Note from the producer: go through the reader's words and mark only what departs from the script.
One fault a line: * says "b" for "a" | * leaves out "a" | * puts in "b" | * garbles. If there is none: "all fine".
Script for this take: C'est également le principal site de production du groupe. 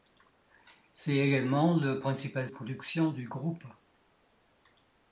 * leaves out "site de"